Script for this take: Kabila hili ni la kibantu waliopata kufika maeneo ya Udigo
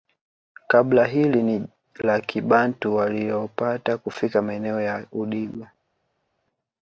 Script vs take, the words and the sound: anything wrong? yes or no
no